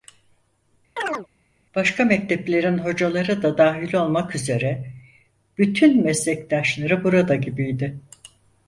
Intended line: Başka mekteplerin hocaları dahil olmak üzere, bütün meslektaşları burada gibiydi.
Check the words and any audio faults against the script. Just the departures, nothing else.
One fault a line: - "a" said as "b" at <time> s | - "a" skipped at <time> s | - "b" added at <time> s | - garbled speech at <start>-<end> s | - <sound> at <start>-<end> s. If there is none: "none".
- chirp at 1.0-1.3 s
- "da" added at 3.4 s